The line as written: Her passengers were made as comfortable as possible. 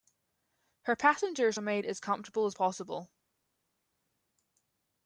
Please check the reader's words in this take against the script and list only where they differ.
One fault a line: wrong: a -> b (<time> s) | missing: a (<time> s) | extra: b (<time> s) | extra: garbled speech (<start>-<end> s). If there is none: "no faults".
no faults